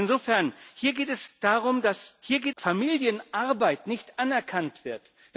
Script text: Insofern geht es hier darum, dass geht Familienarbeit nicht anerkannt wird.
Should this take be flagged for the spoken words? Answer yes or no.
no